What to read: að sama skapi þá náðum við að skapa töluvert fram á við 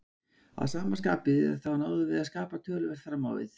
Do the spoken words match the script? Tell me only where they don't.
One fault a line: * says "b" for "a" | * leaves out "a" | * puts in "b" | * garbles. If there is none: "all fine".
all fine